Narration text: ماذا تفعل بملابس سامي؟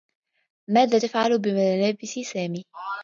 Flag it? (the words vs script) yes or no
no